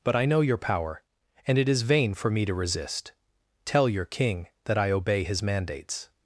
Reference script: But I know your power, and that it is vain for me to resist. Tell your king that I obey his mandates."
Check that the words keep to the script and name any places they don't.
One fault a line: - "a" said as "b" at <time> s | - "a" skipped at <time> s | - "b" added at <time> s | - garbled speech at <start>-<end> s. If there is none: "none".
- "that" skipped at 1.6 s